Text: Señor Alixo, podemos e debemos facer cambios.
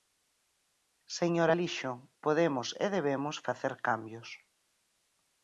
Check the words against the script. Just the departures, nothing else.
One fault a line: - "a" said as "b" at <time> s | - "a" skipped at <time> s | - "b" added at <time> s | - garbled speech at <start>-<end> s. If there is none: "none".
none